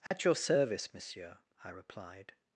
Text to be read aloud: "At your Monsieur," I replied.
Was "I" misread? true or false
false